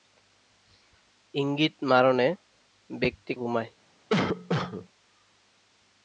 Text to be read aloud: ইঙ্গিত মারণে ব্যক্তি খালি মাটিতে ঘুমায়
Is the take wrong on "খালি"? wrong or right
wrong